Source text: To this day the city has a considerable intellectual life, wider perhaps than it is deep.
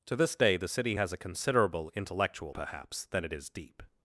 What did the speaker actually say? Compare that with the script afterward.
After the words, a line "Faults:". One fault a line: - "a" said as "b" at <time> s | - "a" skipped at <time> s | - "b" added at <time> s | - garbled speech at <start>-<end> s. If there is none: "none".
To this day the city has a considerable intellectual perhaps than it is deep.
Faults:
- "life wider" skipped at 2.6 s